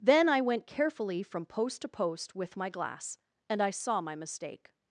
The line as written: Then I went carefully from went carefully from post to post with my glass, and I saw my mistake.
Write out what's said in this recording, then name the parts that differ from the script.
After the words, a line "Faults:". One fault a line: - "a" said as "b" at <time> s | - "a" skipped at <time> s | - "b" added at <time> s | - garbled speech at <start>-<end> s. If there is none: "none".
Then I went carefully from post to post with my glass, and I saw my mistake.
Faults:
- "went carefully from" skipped at 1.4 s